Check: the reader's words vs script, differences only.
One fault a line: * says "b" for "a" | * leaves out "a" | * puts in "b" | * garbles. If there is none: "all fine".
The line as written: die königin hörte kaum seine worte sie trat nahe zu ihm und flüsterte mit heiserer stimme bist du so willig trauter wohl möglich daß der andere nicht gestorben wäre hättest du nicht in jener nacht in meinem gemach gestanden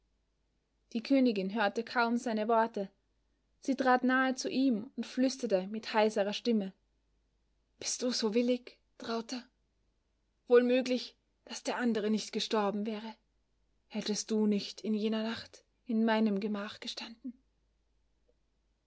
all fine